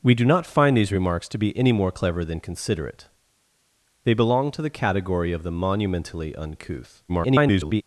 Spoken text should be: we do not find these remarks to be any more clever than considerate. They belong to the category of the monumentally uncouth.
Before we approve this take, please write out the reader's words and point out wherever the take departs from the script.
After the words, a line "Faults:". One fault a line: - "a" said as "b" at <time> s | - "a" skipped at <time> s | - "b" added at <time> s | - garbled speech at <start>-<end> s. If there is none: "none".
we do not find these remarks to be any more clever than considerate. They belong to the category of the monumentally uncouth. [garbled]
Faults:
- garbled speech at 7.1-7.8 s